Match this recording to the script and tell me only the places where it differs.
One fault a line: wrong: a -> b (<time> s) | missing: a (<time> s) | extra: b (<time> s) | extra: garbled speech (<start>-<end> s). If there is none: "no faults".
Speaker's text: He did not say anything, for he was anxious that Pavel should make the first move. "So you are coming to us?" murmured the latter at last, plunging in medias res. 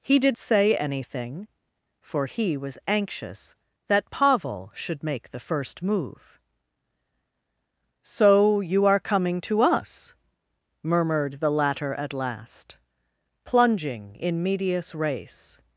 missing: not (0.3 s)